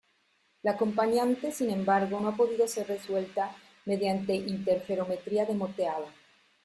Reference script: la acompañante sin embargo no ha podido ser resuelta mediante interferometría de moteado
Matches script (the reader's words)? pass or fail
pass